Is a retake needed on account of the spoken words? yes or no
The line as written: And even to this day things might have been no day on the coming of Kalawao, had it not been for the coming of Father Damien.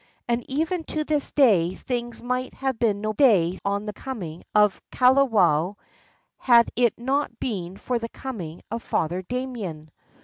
no